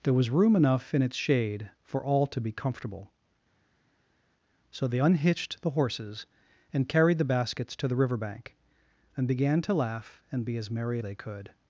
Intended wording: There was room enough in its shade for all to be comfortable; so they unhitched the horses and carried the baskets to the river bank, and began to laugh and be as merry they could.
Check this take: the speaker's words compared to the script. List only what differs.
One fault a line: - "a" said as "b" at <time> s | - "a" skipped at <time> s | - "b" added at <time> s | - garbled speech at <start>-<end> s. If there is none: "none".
none